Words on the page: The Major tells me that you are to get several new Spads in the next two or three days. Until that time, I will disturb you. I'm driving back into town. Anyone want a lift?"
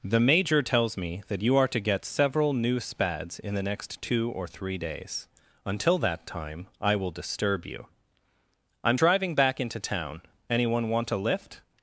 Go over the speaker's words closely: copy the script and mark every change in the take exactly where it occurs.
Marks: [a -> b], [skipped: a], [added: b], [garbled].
The Major tells me that you are to get several new Spads in the next two or three days. Until that time, I will disturb you. I'm driving back into town. Anyone want a lift?"